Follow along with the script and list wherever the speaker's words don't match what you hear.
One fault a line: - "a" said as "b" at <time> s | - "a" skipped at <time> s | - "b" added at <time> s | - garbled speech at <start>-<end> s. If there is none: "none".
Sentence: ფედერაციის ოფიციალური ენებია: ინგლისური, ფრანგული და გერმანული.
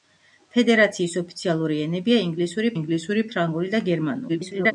- "ინგლისური" added at 2.8 s
- garbled speech at 4.3-4.7 s